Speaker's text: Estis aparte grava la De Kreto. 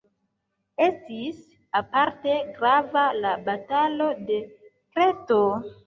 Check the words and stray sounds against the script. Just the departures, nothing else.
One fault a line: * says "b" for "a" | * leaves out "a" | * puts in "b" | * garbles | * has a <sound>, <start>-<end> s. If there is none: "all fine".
* puts in "Batalo"